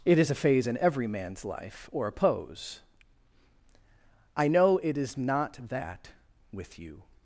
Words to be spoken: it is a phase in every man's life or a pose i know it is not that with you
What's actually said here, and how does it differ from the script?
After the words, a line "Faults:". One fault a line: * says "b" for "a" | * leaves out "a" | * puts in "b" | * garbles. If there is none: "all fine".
it is a phase in every man's life or a pose i know it is not that with you
Faults:
all fine